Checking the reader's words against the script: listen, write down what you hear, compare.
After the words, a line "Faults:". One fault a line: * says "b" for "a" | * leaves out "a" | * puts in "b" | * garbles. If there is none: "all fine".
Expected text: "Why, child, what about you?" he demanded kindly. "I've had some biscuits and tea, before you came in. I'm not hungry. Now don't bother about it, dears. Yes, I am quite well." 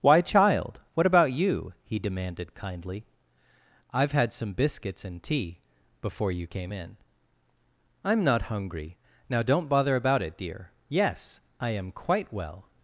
"Why, child, what about you?" he demanded kindly. "I've had some biscuits and tea, before you came in. I'm not hungry. Now don't bother about it, dear. Yes, I am quite well."
Faults:
* says "dear" for "dears"